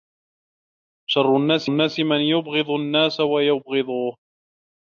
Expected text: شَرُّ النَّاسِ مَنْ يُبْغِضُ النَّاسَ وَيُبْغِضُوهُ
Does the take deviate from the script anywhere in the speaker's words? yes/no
yes